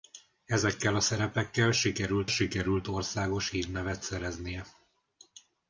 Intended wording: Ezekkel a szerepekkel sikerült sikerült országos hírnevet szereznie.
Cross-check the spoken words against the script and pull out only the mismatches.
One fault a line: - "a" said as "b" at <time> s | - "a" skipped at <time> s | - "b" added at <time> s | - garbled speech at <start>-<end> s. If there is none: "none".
none